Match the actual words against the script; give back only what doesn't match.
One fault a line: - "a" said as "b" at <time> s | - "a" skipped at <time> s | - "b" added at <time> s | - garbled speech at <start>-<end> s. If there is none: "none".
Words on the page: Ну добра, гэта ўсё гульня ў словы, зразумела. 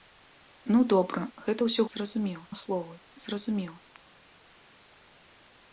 - "гульня" said as "зразумела" at 1.9 s